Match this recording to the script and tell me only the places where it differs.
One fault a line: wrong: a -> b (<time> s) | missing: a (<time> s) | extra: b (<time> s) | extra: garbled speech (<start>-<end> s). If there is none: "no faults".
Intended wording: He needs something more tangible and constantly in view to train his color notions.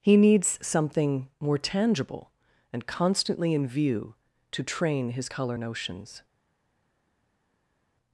no faults